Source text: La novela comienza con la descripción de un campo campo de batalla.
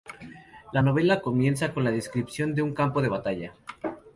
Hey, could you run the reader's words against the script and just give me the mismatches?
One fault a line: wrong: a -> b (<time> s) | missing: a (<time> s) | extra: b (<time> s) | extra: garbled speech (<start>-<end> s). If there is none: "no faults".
missing: campo (3.0 s)